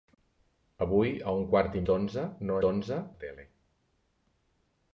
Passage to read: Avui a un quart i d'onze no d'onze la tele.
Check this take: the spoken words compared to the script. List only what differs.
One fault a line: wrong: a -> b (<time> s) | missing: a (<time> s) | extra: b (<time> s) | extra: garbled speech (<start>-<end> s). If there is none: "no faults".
no faults